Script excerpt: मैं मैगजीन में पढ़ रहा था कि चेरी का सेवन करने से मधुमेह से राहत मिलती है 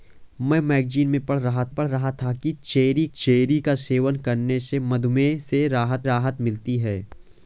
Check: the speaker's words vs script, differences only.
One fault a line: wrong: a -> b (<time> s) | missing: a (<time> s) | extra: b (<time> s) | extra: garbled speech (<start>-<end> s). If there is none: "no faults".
extra: पढ़ रहा (1.7 s)
extra: चेरी (3.2 s)
extra: राहत (6.0 s)